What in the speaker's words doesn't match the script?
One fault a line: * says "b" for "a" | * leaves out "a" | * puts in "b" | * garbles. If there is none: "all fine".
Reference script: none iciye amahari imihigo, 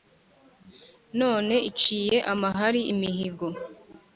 all fine